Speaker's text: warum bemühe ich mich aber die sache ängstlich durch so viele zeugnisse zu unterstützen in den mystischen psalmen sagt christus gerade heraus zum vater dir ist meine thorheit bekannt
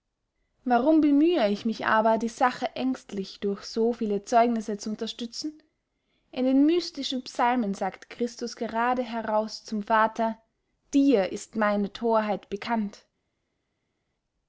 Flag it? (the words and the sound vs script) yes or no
no